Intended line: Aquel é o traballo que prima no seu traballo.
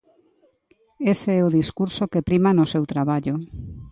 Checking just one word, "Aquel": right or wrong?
wrong